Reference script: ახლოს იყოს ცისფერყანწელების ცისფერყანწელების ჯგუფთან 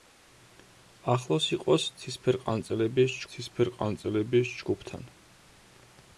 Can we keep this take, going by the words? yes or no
yes